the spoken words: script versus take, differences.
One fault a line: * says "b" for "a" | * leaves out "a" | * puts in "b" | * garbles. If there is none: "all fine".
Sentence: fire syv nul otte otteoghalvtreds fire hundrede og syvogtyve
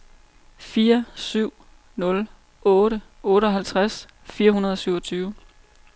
all fine